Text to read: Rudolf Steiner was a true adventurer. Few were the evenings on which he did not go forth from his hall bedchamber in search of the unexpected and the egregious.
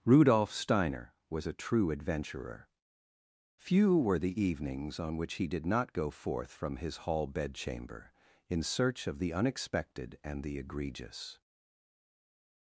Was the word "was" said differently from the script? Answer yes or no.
no